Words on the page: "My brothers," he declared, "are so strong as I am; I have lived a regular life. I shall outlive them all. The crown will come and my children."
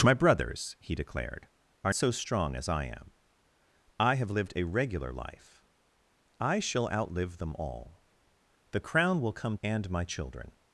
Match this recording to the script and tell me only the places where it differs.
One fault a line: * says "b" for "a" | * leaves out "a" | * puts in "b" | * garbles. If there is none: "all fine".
all fine